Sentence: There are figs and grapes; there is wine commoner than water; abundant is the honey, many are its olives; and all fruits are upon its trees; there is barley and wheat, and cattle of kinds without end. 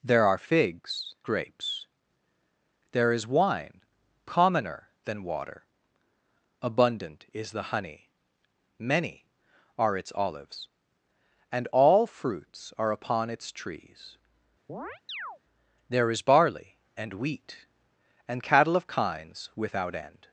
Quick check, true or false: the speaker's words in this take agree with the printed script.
false